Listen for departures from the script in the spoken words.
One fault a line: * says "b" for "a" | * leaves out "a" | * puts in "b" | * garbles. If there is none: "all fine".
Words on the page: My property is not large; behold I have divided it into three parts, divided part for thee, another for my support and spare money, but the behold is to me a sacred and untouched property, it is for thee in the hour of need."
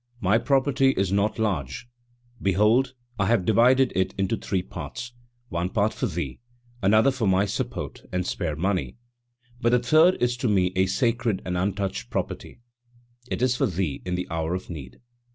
* says "one" for "divided"
* says "third" for "behold"